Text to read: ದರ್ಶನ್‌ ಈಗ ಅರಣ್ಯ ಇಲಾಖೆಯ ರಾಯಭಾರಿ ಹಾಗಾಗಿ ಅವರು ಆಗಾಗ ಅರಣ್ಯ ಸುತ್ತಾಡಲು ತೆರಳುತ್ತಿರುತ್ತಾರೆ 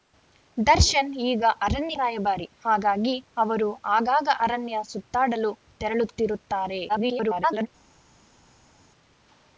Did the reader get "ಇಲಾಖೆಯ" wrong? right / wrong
wrong